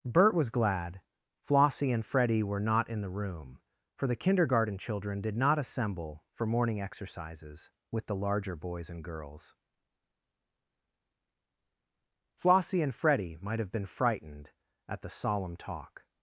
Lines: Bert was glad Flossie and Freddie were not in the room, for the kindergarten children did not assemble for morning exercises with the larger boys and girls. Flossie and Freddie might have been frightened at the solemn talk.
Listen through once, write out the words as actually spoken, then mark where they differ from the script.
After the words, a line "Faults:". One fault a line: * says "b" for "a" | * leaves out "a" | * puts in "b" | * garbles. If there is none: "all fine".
Bert was glad Flossie and Freddie were not in the room, for the kindergarten children did not assemble for morning exercises with the larger boys and girls. Flossie and Freddie might have been frightened at the solemn talk.
Faults:
all fine